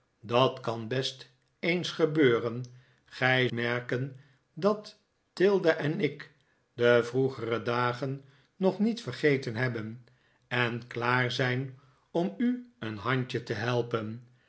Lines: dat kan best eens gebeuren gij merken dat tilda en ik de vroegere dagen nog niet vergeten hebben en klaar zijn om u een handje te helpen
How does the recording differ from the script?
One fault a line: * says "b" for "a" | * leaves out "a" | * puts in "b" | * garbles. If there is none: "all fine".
all fine